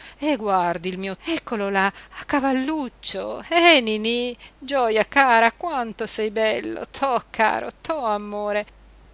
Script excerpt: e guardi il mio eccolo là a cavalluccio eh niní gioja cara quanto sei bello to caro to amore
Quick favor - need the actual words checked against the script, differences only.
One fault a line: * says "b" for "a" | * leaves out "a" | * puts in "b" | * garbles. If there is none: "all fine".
all fine